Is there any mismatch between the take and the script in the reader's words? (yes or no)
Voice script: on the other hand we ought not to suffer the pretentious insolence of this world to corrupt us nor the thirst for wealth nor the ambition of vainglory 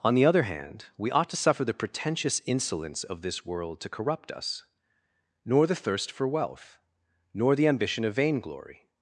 yes